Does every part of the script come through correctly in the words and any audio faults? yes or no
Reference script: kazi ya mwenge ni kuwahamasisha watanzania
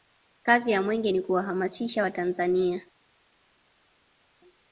yes